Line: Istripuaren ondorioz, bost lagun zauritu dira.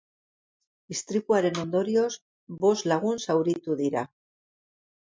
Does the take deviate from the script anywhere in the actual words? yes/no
no